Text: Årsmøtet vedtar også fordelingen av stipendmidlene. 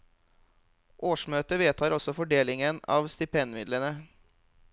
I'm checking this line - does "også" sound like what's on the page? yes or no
yes